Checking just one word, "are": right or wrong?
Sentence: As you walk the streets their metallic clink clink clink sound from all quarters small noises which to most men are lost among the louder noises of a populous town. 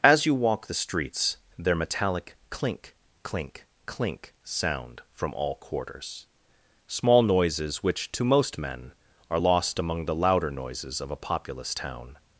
right